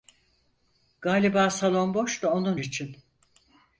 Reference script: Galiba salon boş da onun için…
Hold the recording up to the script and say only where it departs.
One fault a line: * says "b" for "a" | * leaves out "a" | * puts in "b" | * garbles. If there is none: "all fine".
all fine